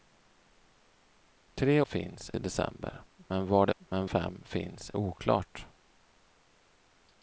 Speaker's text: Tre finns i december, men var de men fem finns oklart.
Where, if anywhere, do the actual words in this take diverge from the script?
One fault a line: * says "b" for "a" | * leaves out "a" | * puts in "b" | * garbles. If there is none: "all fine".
all fine